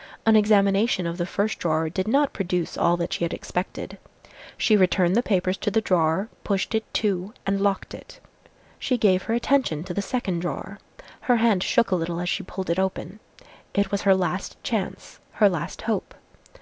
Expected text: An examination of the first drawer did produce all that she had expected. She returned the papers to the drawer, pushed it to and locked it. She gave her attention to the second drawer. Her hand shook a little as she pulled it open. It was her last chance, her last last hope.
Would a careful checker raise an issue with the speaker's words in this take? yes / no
yes